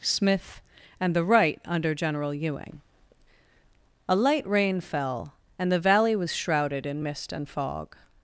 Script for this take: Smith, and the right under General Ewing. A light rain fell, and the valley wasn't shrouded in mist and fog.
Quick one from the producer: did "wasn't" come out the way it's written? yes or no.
no